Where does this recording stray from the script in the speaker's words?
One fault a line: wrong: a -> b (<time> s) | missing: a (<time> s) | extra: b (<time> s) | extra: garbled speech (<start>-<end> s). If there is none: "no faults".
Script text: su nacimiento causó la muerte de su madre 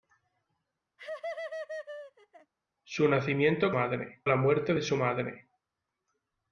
wrong: causó -> madre (3.7 s)